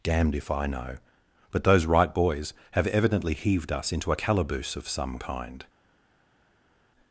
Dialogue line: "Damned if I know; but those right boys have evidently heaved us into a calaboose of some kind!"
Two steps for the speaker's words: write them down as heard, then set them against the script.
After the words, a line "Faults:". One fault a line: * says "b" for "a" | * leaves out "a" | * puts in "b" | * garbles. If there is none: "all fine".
"Damned if I know; but those right boys have evidently heaved us into a calaboose of some kind!"
Faults:
all fine